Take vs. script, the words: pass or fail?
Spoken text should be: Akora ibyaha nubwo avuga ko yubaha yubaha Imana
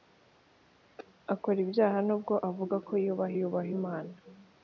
pass